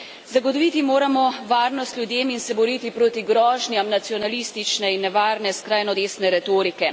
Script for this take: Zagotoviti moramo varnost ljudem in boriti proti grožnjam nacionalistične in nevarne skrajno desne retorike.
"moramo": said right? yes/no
yes